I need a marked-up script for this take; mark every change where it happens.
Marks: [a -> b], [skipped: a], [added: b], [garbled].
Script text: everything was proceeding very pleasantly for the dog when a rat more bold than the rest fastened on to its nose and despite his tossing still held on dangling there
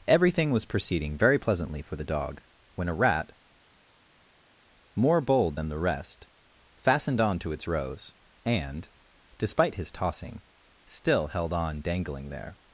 everything was proceeding very pleasantly for the dog when a rat more bold than the rest fastened on to its [nose -> rose] and despite his tossing still held on dangling there